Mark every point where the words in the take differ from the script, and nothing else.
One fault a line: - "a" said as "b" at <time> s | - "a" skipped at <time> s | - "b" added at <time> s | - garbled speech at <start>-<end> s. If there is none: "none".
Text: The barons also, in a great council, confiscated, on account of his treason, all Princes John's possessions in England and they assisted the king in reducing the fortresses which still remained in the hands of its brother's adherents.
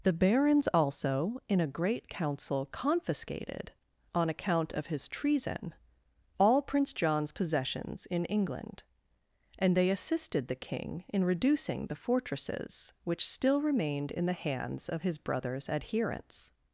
- "Princes" said as "Prince" at 6.6 s
- "its" said as "his" at 15.0 s